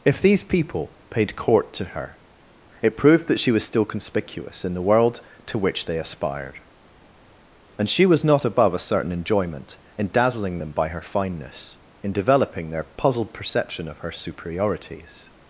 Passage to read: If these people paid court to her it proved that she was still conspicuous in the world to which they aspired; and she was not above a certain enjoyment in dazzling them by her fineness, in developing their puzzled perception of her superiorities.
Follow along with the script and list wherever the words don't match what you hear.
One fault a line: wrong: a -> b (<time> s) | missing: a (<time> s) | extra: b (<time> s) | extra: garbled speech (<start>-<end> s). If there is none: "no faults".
no faults